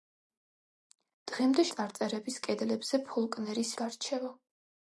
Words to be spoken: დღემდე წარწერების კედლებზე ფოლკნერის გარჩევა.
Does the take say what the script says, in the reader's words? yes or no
yes